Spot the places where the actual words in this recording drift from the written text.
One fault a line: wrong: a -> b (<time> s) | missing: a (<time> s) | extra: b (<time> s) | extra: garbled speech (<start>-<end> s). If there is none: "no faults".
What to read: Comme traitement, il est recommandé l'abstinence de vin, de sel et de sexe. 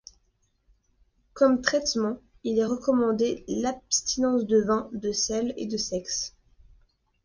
no faults